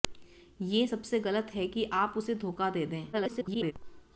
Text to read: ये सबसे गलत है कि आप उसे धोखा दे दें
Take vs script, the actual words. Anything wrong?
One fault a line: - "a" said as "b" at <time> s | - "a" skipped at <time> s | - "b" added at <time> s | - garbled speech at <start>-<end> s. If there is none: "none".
- garbled speech at 3.1-3.7 s